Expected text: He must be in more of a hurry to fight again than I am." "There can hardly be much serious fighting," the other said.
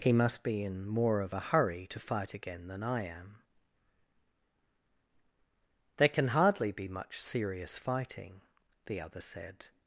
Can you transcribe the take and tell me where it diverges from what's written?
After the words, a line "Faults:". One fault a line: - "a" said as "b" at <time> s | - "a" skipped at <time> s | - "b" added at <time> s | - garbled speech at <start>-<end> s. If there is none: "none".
He must be in more of a hurry to fight again than I am." "There can hardly be much serious fighting," the other said.
Faults:
none